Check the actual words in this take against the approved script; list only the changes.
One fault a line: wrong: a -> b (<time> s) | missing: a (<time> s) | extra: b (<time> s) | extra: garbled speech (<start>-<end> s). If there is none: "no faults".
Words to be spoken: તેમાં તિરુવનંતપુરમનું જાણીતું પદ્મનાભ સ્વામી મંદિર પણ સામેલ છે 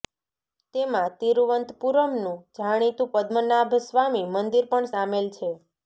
no faults